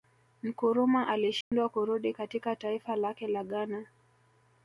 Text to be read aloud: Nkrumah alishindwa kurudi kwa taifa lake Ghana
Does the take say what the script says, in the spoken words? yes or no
no